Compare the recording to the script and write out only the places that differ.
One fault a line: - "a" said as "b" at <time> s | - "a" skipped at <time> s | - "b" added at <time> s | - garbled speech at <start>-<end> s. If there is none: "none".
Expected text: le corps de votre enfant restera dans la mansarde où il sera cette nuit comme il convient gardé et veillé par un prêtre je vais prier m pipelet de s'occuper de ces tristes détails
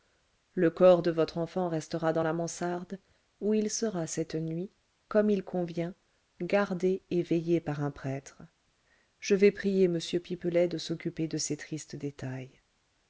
none